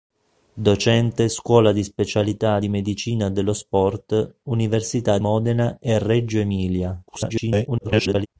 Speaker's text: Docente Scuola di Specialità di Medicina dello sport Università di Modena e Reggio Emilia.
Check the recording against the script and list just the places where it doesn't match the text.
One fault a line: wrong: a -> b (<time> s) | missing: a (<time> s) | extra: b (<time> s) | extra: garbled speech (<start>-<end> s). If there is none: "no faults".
missing: di (5.2 s)
extra: garbled speech (7.1-8.3 s)